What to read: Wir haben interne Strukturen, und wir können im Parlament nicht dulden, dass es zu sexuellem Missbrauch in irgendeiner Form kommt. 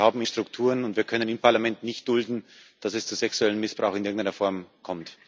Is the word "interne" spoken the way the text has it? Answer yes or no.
no